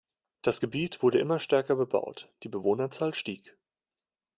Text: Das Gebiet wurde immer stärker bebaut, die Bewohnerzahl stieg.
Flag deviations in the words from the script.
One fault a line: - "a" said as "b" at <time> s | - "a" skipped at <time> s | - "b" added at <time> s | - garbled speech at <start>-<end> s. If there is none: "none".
none